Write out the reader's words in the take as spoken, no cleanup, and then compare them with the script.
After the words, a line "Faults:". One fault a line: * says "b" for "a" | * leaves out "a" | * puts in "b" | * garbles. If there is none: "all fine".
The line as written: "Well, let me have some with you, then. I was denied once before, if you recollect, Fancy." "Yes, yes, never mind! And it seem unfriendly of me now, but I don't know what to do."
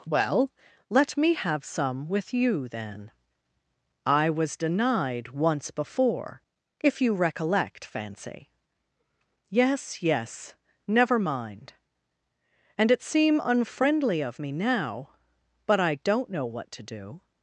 "Well, let me have some with you, then. I was denied once before, if you recollect, Fancy." "Yes, yes, never mind! And it seem unfriendly of me now, but I don't know what to do."
Faults:
all fine